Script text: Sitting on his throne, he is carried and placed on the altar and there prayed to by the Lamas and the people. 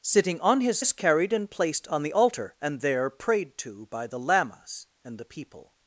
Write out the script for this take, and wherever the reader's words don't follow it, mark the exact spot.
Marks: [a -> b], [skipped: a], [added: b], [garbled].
Sitting on his [skipped: throne, he] is carried and placed on the altar and there prayed to by the Lamas and the people.